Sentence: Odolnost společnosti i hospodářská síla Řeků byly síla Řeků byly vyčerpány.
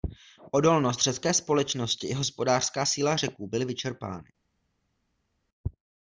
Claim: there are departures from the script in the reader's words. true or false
true